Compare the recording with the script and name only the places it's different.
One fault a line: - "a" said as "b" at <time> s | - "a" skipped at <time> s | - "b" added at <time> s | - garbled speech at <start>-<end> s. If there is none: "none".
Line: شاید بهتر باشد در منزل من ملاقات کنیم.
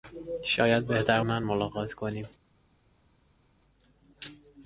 - "باشد در منزل" skipped at 1.2 s